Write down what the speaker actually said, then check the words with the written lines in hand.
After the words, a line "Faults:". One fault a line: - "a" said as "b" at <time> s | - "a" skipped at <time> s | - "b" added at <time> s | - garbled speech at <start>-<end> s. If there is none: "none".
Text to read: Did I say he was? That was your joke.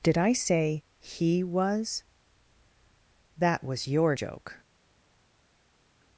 Did I say he was? That was your joke.
Faults:
none